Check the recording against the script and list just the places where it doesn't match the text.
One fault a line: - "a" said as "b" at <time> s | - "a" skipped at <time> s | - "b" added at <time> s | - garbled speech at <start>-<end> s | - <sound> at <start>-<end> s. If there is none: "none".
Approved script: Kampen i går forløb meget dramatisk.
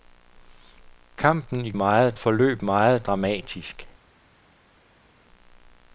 - "går" said as "meget" at 1.7 s